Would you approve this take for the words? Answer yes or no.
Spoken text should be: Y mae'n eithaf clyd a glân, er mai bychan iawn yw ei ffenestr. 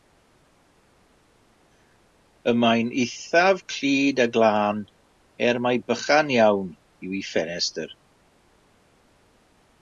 yes